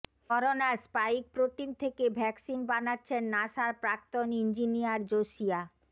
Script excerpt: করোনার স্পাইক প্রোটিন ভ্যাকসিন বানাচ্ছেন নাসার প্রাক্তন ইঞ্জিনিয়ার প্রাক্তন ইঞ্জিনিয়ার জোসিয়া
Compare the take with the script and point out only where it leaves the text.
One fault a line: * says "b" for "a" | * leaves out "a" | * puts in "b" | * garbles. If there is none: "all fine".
* puts in "থেকে"
* leaves out "প্রাক্তন ইঞ্জিনিয়ার"